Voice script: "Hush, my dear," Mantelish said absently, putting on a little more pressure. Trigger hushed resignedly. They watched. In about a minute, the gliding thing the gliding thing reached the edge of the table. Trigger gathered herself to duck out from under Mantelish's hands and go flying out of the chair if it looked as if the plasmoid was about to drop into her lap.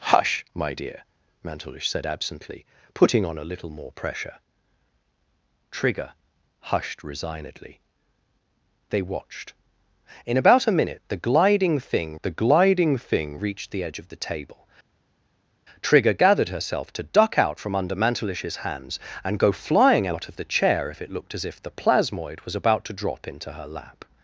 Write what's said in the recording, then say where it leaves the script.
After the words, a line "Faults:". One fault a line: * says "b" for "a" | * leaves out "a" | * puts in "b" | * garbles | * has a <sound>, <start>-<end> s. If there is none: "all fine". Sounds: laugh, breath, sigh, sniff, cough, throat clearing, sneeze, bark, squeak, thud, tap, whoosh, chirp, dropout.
"Hush, my dear," Mantelish said absently, putting on a little more pressure. Trigger hushed resignedly. They watched. In about a minute, the gliding thing the gliding thing reached the edge of the table. Trigger gathered herself to duck out from under Mantelish's hands and go flying out of the chair if it looked as if the plasmoid was about to drop into her lap.
Faults:
all fine